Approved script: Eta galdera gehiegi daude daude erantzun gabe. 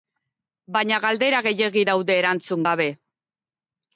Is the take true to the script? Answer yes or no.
no